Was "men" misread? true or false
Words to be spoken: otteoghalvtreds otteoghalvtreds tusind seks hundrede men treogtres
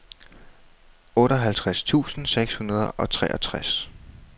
true